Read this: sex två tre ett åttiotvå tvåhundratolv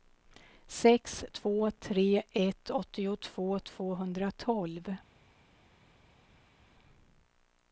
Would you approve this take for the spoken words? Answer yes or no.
yes